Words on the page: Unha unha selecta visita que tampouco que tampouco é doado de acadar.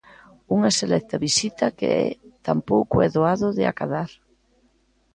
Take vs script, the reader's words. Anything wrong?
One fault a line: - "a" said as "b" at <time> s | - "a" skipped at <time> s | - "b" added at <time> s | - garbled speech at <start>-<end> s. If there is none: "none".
- "unha" skipped at 0.7 s
- "que tampouco" skipped at 3.0 s